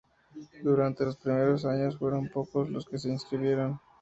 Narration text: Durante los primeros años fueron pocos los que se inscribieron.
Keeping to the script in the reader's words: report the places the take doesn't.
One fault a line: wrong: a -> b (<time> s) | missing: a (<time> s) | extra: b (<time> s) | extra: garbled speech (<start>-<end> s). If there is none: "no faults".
no faults